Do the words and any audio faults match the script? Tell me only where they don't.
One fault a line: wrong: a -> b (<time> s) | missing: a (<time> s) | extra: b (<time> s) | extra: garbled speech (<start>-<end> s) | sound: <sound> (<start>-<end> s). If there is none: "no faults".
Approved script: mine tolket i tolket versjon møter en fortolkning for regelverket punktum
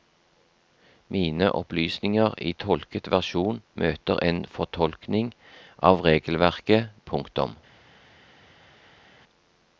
wrong: tolket -> opplysninger (1.6 s)
wrong: for -> av (5.9 s)